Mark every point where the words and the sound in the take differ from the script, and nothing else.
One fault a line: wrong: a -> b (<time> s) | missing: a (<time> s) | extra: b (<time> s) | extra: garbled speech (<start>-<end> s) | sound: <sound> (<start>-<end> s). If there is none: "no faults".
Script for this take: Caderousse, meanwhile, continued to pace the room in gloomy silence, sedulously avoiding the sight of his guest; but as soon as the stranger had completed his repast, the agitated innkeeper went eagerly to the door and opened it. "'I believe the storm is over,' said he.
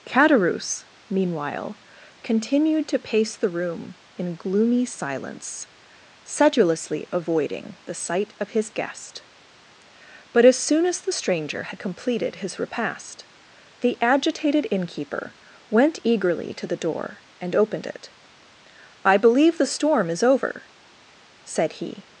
no faults